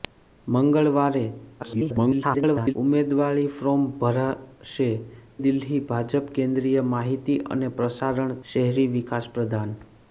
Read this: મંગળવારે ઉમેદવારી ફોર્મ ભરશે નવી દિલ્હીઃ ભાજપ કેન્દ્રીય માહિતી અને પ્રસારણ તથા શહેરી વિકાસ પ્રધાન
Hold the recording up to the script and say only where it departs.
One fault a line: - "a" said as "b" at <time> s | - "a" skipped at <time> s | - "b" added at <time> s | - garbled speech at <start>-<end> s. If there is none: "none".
- garbled speech at 1.6-2.7 s
- "નવી" skipped at 4.9 s
- "તથા" skipped at 8.4 s